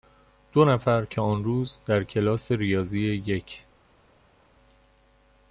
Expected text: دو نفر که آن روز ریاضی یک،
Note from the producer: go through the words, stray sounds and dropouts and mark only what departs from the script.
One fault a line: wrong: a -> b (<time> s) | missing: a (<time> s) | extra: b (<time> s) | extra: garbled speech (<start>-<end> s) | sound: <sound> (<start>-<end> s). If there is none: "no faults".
extra: در کلاس (1.9 s)